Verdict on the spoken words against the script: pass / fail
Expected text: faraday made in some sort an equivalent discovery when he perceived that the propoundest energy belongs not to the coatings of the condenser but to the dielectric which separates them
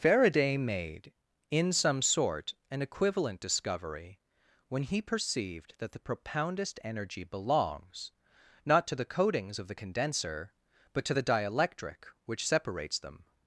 pass